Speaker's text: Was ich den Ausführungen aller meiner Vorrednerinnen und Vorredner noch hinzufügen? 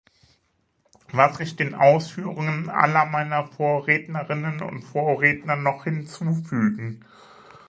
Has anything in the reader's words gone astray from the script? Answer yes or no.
no